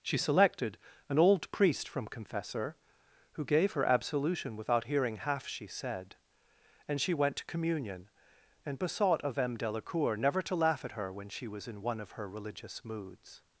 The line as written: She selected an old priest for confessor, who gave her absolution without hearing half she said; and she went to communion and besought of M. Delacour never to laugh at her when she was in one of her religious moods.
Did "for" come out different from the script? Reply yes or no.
yes